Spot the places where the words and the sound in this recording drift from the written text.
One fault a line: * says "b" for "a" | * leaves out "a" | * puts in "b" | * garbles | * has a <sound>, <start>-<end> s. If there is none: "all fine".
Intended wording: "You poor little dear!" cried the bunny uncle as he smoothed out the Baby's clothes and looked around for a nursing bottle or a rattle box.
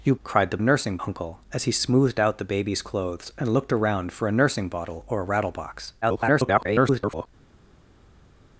* leaves out "poor little dear"
* says "nursing" for "bunny"
* garbles